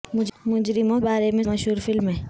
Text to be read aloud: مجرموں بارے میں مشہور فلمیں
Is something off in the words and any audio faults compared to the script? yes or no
no